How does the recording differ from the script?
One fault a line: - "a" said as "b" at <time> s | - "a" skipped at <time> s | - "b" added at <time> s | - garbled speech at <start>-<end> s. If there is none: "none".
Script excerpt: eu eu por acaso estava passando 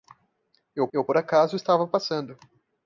none